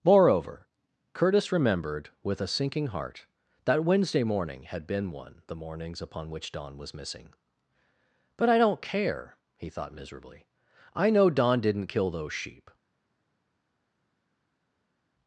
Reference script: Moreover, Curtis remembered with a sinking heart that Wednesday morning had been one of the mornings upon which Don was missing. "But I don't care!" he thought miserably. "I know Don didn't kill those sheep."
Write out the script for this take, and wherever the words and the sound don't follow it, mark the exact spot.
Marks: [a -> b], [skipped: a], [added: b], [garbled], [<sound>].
Moreover, Curtis remembered with a sinking heart that Wednesday morning had been one [skipped: of] the mornings upon which Don was missing. "But I don't care!" he thought miserably. "I know Don didn't kill those sheep."